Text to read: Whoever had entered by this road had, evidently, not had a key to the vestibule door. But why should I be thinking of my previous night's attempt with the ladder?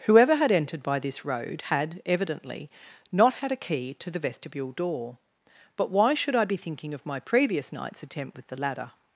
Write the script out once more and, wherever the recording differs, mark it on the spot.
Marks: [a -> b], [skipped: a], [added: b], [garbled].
Whoever had entered by this road had, evidently, not had a key to the vestibule door. But why should I be thinking of my previous night's attempt with the ladder?